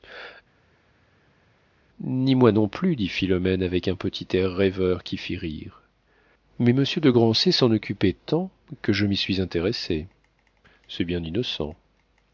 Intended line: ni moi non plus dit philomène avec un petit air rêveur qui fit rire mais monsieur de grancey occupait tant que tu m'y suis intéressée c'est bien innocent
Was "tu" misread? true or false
true